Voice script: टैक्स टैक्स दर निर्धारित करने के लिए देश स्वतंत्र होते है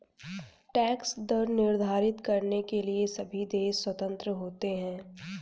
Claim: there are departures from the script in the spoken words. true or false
true